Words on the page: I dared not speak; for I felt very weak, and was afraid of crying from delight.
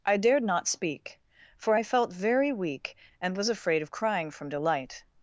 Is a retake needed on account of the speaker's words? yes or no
no